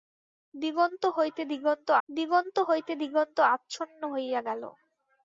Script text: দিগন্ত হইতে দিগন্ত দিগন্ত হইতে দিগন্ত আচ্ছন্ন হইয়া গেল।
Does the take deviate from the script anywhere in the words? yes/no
no